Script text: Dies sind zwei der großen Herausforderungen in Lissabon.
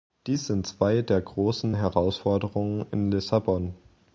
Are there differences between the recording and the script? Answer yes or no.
no